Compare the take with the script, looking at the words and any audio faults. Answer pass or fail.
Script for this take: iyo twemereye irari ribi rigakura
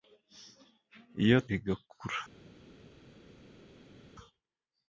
fail